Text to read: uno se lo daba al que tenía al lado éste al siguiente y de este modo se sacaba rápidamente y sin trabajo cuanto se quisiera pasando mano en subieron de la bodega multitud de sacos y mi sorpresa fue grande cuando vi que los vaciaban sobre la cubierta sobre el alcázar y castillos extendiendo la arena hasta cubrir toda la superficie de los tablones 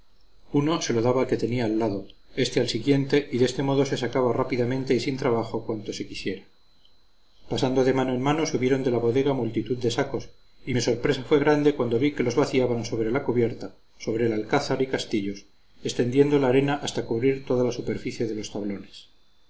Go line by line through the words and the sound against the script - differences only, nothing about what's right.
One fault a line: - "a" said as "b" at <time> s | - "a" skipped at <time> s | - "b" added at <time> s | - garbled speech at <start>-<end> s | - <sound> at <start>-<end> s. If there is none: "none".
- "de" added at 7.8 s
- "mano" added at 8.2 s